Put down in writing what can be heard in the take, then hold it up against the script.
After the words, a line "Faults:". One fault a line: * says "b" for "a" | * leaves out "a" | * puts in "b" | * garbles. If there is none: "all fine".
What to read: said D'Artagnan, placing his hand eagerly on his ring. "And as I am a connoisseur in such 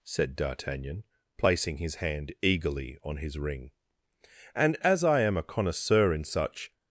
said D'Artagnan, placing his hand eagerly on his ring. "And as I am a connoisseur in such
Faults:
all fine